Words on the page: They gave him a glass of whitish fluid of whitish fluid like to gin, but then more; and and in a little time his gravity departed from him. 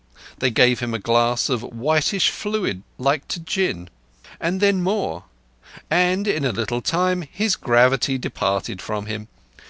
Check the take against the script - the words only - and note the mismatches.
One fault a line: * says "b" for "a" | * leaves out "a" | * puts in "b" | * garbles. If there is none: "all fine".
* leaves out "of whitish fluid"
* says "and" for "but"
* leaves out "and"